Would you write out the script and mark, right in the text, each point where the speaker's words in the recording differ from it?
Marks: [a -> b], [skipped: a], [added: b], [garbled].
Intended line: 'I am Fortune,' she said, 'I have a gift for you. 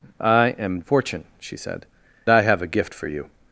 'I am Fortune,' she said, 'I have a gift for you.